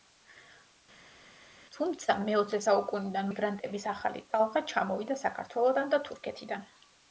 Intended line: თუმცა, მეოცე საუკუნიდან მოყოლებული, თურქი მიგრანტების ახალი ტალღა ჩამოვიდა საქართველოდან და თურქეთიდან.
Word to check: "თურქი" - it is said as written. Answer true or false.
false